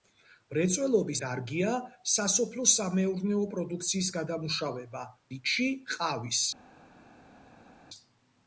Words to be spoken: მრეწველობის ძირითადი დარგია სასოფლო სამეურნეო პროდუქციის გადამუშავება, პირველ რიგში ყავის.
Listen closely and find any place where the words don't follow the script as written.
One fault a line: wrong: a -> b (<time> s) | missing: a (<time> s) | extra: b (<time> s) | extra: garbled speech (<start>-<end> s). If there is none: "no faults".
missing: ძირითადი (1.2 s)
missing: პირველ (5.0 s)